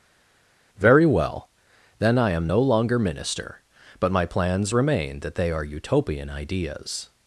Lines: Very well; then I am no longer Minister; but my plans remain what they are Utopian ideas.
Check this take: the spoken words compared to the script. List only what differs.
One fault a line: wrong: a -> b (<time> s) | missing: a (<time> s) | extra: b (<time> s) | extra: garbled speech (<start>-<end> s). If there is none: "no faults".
wrong: what -> that (5.2 s)